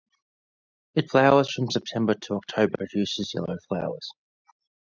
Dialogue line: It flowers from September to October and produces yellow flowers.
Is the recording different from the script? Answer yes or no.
yes